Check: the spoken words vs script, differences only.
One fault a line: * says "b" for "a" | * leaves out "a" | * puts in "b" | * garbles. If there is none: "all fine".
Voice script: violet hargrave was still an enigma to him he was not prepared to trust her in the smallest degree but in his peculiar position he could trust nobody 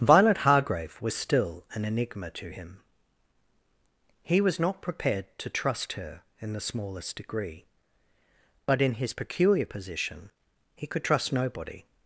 all fine